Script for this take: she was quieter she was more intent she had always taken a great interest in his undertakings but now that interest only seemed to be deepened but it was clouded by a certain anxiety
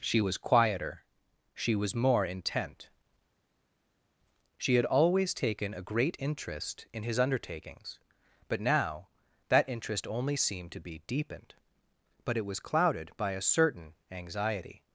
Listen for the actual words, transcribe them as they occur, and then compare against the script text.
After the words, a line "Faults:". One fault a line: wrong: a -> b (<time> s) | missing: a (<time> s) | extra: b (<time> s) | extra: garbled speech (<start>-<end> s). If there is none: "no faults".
she was quieter she was more intent she had always taken a great interest in his undertakings but now that interest only seemed to be deepened but it was clouded by a certain anxiety
Faults:
no faults